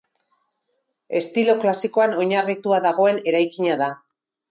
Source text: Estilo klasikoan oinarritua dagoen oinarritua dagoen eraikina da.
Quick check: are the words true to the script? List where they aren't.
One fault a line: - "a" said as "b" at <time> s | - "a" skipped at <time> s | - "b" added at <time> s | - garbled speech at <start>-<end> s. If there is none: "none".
- "oinarritua dagoen" skipped at 3.2 s